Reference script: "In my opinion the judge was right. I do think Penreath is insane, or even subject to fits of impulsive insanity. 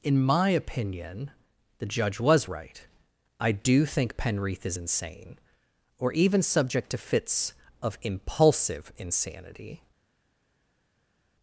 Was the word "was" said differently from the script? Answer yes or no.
no